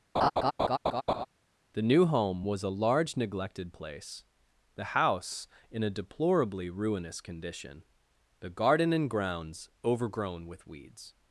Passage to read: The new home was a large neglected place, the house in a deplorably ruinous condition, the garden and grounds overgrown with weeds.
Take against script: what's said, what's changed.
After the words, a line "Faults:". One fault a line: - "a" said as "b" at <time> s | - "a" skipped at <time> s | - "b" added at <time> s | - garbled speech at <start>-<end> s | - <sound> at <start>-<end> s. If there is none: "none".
The new home was a large neglected place, the house in a deplorably ruinous condition, the garden and grounds overgrown with weeds.
Faults:
- laugh at 0.1-1.3 s